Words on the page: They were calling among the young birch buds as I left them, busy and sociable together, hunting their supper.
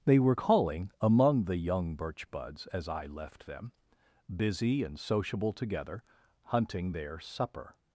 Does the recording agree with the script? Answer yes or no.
yes